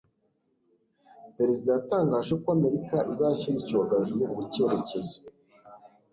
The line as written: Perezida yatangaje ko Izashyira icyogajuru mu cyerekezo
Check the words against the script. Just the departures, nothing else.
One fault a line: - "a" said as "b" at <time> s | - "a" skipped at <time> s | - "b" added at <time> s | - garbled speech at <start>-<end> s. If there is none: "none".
- "Amerika" added at 2.6 s